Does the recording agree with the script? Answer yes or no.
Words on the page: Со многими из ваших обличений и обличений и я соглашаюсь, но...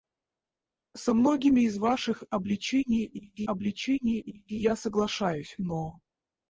yes